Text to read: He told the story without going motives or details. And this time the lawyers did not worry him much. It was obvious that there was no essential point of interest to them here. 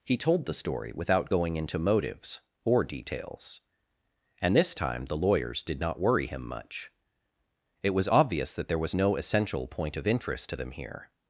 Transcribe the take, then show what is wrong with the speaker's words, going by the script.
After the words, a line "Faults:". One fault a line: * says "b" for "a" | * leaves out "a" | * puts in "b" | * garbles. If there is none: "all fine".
He told the story without going into motives or details. And this time the lawyers did not worry him much. It was obvious that there was no essential point of interest to them here.
Faults:
* puts in "into"